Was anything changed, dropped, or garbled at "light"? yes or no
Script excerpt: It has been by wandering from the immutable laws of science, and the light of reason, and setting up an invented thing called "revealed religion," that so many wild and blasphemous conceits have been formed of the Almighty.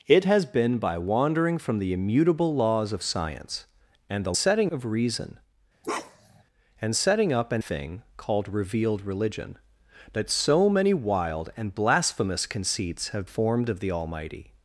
yes